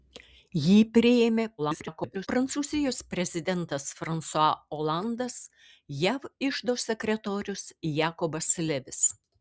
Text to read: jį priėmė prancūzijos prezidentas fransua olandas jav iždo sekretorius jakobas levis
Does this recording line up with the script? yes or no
no